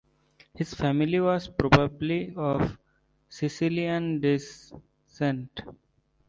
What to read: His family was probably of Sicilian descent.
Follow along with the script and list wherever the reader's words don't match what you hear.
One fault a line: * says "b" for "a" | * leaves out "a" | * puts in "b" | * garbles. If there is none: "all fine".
all fine